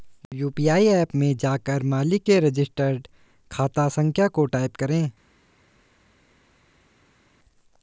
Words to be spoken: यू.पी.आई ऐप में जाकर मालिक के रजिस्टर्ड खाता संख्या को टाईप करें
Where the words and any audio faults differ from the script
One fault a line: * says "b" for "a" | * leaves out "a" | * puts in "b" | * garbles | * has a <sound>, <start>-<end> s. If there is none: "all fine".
all fine